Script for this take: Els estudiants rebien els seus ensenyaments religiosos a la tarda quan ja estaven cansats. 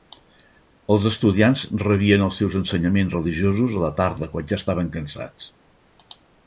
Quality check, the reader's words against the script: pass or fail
pass